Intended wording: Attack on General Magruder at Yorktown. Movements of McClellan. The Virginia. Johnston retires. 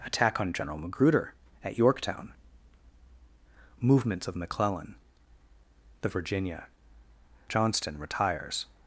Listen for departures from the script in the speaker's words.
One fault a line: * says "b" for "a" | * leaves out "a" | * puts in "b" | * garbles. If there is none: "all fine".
all fine